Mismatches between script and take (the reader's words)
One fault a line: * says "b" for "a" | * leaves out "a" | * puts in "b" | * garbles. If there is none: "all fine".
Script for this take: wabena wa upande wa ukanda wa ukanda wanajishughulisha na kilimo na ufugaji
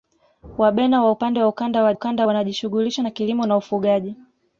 all fine